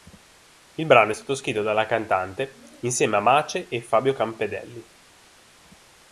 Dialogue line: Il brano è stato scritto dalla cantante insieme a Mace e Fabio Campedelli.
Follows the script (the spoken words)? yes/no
yes